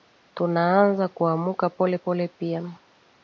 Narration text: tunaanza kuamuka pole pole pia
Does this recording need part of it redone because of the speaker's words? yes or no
no